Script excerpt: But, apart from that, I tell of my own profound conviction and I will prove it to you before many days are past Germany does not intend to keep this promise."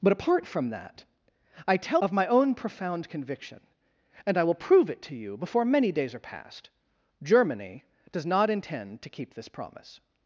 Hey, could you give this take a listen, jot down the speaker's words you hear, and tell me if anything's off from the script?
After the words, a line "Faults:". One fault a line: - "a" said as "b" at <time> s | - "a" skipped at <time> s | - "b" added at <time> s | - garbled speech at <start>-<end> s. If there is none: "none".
But, apart from that, I tell of my own profound conviction and I will prove it to you before many days are past Germany does not intend to keep this promise."
Faults:
none